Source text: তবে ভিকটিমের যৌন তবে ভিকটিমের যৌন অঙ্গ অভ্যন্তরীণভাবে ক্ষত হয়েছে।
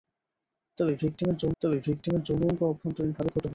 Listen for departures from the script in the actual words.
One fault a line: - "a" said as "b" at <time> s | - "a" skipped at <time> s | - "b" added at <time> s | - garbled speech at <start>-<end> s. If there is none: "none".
none